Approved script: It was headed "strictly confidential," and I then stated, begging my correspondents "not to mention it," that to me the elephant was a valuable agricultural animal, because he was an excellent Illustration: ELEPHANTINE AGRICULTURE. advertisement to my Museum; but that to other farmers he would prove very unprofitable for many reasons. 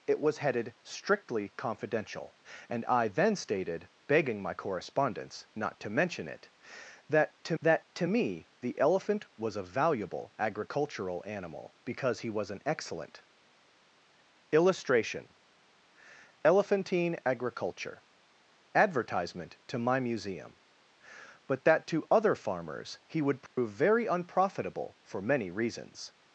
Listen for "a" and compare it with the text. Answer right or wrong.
right